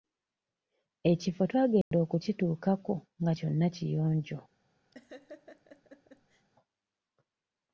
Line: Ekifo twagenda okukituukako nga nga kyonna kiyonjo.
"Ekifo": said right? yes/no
yes